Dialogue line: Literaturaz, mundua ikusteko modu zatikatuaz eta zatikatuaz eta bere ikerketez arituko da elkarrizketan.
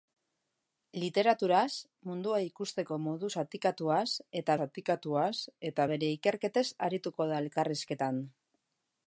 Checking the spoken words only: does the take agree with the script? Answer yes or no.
yes